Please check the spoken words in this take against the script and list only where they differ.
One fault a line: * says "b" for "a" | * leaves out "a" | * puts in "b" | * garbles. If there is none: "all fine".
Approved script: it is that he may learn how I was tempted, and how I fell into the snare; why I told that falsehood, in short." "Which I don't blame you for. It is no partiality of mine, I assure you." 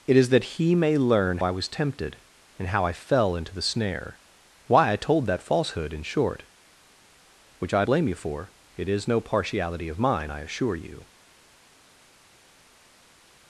* leaves out "how"
* leaves out "don't"